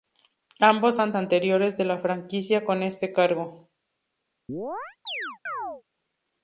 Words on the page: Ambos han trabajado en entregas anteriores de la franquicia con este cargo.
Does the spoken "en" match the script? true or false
false